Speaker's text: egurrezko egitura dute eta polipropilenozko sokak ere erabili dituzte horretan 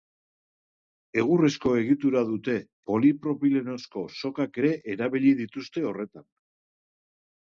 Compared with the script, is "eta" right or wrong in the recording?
wrong